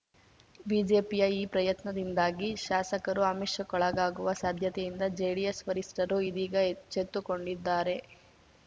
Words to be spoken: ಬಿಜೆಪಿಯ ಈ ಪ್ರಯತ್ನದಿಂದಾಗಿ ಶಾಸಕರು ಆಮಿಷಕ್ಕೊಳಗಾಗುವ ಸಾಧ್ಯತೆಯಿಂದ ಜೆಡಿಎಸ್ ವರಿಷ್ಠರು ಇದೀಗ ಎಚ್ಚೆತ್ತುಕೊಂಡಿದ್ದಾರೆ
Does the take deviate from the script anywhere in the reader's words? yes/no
no